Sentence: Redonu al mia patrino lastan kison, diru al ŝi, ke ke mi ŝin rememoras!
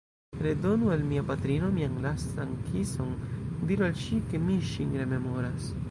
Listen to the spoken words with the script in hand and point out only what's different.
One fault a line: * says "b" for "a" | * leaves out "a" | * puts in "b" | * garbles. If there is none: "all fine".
* puts in "mian"
* leaves out "ke"